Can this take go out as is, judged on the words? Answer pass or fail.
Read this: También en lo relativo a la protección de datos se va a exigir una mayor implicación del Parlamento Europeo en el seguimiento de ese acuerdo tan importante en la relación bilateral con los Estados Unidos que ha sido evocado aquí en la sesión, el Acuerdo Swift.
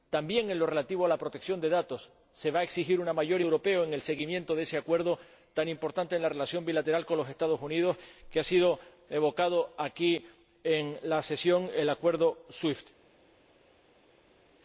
fail